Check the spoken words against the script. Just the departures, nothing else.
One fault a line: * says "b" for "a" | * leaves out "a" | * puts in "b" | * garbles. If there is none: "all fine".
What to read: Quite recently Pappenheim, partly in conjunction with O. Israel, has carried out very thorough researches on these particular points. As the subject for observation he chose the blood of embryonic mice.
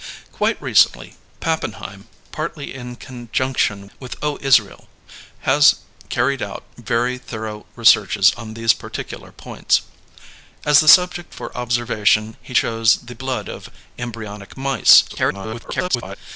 * garbles